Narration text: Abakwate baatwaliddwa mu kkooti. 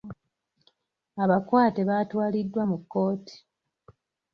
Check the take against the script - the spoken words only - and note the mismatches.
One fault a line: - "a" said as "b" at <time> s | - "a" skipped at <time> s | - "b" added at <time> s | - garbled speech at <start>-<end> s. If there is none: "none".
none